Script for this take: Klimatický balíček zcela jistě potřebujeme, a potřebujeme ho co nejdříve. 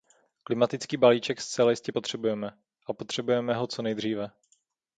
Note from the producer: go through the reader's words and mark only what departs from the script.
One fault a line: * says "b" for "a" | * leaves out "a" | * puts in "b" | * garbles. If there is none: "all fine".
all fine